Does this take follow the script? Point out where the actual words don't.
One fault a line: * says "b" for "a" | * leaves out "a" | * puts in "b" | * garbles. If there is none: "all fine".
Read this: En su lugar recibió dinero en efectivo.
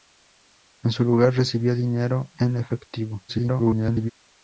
* garbles